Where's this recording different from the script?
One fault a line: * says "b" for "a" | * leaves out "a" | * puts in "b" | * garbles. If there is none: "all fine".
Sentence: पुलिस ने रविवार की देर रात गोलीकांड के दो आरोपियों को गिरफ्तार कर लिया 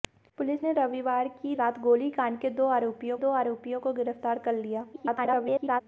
* leaves out "देर"
* puts in "दो आरोपियों"
* garbles